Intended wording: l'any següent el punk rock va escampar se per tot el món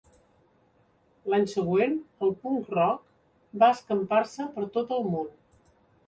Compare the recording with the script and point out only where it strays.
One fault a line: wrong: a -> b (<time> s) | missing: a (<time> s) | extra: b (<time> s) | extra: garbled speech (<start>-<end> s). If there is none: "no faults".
no faults